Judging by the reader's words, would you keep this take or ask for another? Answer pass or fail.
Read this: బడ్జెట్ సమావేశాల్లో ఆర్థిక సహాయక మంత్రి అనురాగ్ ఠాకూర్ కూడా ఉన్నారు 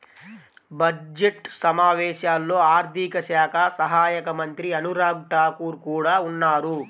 fail